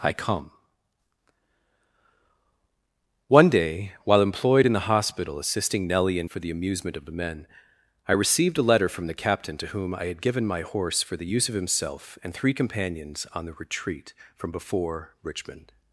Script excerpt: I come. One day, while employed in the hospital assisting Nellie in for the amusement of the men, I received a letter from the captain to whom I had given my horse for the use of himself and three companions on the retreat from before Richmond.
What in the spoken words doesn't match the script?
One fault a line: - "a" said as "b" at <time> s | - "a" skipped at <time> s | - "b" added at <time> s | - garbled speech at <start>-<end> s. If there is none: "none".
none